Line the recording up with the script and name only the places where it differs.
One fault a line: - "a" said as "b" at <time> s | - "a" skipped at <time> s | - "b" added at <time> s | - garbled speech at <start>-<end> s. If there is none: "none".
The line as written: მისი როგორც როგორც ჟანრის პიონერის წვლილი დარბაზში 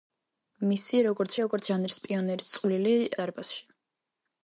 none